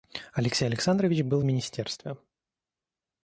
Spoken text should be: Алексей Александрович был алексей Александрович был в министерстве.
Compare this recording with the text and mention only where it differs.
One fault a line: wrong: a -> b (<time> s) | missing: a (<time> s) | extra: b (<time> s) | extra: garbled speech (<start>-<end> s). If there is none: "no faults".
missing: алексей Александрович был (1.4 s)